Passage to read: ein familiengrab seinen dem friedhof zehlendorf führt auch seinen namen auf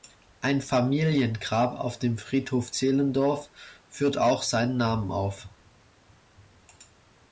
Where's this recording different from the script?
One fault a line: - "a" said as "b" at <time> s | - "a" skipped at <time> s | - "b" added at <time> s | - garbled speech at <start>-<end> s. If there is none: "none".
- "seinen" said as "auf" at 1.8 s